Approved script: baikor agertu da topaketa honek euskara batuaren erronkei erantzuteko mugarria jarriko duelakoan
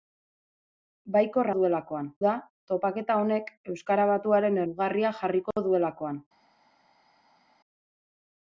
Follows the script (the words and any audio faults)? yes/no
no